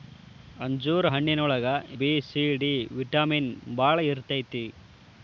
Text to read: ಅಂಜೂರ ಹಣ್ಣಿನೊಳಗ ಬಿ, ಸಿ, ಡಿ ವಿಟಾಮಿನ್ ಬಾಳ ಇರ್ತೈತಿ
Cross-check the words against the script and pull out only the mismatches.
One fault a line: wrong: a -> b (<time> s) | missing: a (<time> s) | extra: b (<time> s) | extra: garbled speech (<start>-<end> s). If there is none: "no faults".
no faults